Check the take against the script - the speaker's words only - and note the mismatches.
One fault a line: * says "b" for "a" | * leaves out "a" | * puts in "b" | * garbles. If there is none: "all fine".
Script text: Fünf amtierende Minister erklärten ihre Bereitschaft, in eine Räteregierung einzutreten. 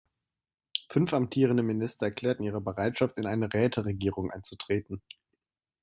all fine